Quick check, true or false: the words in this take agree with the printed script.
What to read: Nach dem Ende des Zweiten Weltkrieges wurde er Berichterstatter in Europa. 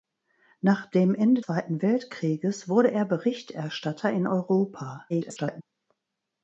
false